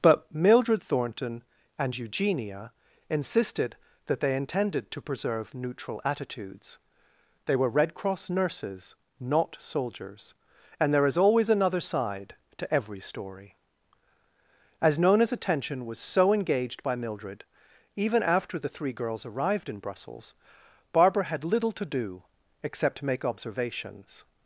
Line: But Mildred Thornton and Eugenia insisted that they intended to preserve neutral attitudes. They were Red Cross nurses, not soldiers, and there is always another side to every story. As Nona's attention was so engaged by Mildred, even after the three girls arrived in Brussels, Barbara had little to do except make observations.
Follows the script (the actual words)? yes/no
yes